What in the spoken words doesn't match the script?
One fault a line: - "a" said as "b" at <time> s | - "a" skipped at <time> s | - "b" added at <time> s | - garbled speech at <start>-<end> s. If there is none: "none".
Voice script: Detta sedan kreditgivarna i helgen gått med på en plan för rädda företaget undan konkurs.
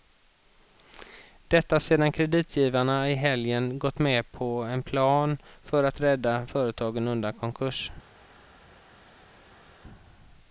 - "att" added at 5.8 s